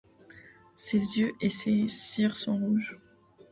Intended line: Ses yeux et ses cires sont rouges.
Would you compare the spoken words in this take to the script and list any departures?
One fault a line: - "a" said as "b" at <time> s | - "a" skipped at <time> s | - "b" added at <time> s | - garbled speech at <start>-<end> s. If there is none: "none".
none